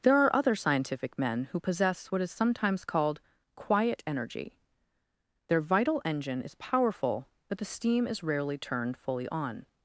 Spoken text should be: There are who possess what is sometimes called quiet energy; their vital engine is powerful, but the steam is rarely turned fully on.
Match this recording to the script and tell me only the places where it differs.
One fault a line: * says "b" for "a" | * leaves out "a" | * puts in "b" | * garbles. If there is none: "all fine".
* puts in "other scientific men"